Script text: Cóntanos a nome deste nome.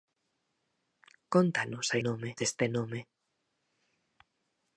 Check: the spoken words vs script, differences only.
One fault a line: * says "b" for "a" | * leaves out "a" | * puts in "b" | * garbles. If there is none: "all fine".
all fine